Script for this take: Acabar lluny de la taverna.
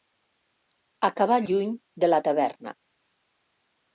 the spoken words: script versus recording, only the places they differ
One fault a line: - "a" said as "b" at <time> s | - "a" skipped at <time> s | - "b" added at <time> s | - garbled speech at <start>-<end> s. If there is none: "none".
none